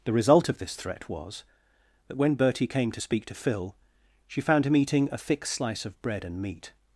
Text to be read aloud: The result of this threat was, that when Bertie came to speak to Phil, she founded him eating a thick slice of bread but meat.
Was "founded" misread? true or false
true